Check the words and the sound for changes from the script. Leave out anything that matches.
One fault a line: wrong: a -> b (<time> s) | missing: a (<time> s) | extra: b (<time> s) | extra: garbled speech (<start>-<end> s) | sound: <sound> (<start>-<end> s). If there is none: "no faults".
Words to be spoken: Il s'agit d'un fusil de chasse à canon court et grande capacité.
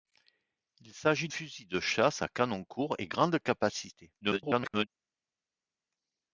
missing: d'un (1.3 s)
extra: garbled speech (4.2-4.9 s)